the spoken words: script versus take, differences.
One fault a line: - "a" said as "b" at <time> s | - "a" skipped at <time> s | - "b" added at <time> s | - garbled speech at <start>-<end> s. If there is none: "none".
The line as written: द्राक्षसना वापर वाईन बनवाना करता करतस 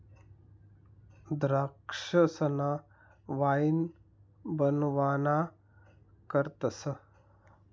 - "वापर" skipped at 2.7 s
- "करता" skipped at 5.4 s